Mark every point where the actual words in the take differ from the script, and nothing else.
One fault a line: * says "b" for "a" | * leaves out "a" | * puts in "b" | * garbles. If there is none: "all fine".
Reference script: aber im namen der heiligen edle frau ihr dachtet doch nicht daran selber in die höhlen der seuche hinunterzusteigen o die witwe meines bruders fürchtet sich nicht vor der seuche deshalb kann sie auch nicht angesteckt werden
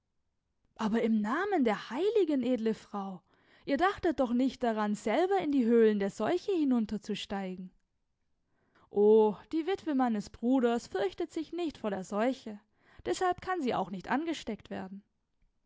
all fine